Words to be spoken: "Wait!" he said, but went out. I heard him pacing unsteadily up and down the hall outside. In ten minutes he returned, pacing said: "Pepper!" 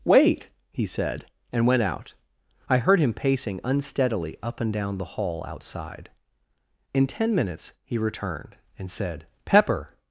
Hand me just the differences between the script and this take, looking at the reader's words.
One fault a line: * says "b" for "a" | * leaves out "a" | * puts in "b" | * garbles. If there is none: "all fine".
* says "and" for "but"
* says "and" for "pacing"